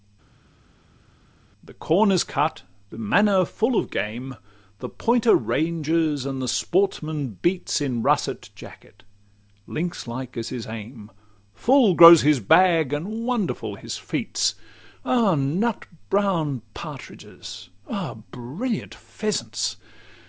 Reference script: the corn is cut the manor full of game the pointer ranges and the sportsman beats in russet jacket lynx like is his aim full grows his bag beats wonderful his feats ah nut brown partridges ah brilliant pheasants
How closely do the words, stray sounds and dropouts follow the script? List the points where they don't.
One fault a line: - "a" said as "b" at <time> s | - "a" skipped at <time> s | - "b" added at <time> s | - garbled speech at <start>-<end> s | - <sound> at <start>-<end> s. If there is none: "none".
- "beats" said as "and" at 12.9 s